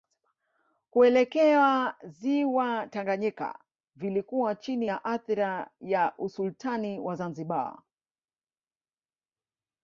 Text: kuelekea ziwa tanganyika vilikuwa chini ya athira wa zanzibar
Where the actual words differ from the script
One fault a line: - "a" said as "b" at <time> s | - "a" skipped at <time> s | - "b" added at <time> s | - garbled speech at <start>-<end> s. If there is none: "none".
- "ya usultani" added at 5.8 s